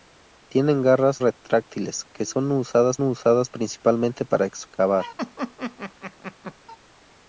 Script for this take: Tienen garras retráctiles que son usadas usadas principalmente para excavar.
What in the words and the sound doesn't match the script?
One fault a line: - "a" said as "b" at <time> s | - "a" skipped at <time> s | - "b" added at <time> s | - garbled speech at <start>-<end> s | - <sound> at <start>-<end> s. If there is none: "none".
- laugh at 5.2-6.5 s